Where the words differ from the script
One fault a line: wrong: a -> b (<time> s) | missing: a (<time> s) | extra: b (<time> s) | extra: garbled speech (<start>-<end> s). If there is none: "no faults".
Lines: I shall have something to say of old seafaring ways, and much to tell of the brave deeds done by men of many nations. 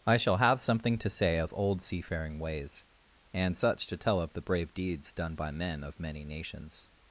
wrong: much -> such (3.5 s)